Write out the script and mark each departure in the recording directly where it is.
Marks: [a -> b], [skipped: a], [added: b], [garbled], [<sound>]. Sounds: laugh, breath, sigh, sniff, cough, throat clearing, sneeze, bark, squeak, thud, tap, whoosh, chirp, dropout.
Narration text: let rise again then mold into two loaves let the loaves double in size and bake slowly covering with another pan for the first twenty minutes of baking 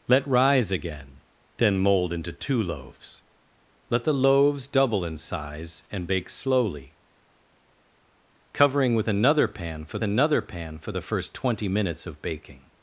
let rise again then mold into two loaves let the loaves double in size and bake slowly covering with another pan for [added: another pan for] the first twenty minutes of baking